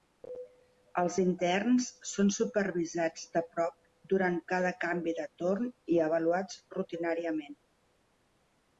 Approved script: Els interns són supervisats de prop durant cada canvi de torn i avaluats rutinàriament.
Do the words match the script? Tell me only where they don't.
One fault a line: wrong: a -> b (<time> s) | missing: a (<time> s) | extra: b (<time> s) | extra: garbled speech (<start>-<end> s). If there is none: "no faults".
no faults